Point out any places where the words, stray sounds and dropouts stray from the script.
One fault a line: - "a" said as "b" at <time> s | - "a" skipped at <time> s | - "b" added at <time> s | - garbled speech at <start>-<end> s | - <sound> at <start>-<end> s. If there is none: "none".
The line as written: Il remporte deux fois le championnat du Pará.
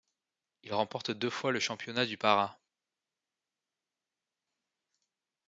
none